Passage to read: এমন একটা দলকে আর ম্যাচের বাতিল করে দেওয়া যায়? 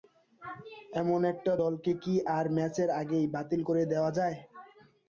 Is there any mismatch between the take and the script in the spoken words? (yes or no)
yes